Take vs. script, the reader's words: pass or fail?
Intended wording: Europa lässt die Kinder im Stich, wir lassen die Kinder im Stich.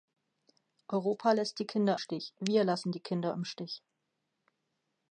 fail